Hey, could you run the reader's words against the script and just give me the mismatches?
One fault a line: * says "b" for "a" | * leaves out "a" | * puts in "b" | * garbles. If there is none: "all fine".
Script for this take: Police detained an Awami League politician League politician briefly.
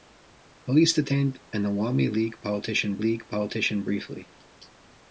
all fine